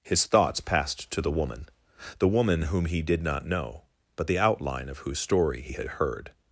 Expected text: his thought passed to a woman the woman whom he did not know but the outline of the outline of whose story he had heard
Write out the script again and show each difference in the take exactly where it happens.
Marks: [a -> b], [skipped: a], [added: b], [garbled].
his [thought -> thoughts] passed to [a -> the] woman the woman whom he did not know but the outline of [skipped: the outline of] whose story he had heard